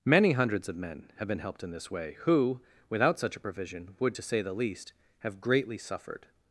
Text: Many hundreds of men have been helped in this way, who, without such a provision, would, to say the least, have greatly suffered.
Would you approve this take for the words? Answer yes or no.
yes